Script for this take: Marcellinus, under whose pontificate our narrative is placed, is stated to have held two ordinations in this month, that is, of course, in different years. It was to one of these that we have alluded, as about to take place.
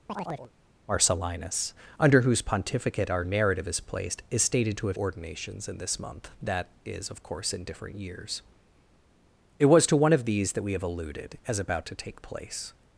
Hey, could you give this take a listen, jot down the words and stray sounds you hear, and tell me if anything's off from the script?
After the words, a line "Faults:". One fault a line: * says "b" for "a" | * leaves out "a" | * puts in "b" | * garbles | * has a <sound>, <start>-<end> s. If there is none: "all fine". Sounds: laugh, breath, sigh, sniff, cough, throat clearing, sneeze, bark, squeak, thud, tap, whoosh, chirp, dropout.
Marcellinus, under whose pontificate our narrative is placed, is stated to have ordinations in this month, that is, of course, in different years. It was to one of these that we have alluded, as about to take place.
Faults:
* has a chirp, 0.1-0.5 s
* leaves out "held two"